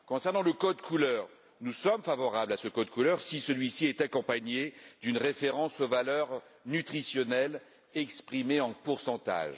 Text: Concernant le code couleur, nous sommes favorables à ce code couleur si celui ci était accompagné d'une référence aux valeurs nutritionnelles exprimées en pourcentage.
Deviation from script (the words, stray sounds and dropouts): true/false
true